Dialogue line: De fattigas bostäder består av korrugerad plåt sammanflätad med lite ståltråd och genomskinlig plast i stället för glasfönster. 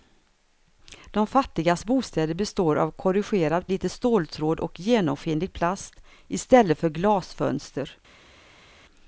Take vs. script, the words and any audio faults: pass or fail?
fail